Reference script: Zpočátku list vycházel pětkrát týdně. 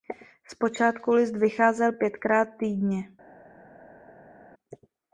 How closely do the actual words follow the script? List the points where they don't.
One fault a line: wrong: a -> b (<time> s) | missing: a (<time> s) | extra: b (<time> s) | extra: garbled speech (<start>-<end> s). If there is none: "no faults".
no faults